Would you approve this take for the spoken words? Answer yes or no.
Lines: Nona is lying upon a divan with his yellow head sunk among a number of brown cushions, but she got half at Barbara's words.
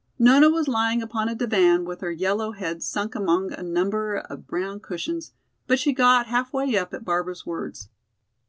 no